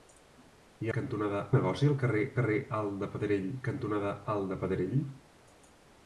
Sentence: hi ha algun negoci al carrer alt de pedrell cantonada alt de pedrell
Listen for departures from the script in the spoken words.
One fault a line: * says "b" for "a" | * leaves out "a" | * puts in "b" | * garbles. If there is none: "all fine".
* says "cantonada" for "algun"
* puts in "carrer"